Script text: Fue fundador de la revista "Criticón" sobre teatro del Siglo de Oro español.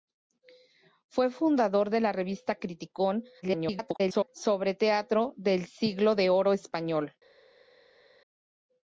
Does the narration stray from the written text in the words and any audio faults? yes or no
yes